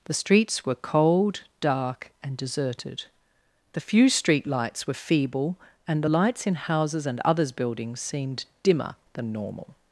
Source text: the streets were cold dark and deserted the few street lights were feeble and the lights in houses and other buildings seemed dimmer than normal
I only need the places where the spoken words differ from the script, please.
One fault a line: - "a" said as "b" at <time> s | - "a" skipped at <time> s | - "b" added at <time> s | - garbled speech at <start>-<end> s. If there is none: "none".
- "other" said as "others" at 7.2 s